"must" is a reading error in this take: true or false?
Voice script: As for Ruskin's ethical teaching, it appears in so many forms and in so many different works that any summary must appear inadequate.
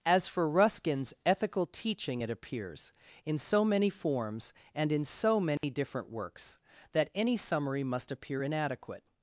false